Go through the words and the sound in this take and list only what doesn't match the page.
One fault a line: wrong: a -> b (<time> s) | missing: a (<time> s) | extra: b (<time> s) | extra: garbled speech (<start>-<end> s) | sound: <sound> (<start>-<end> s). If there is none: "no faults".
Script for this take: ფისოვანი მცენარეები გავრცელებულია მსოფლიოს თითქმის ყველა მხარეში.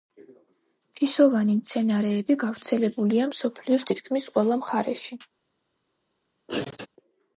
sound: sneeze (6.5-6.9 s)